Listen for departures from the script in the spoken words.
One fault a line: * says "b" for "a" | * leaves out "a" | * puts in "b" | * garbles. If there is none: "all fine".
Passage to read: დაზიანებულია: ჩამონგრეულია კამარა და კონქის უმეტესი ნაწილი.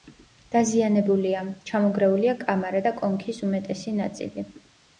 all fine